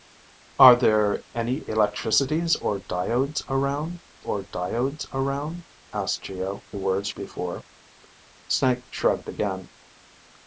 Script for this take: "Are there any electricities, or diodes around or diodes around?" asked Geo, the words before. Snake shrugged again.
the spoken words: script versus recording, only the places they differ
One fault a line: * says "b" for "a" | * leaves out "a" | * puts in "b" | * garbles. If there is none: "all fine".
all fine